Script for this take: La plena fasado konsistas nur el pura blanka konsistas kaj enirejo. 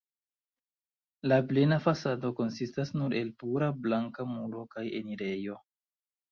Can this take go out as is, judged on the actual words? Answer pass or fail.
fail